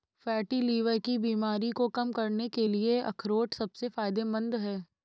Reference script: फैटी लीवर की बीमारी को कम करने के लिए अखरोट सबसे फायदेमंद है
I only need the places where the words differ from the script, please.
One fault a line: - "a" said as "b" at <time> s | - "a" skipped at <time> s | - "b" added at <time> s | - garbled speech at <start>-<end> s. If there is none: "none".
none